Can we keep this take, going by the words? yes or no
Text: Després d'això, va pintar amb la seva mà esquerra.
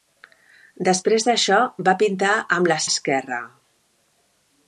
no